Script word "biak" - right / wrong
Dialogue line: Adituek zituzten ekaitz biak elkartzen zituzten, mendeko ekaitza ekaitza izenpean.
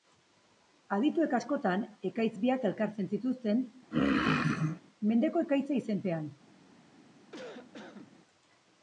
right